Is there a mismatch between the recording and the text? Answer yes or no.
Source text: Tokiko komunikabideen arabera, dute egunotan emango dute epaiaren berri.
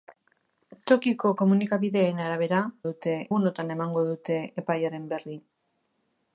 no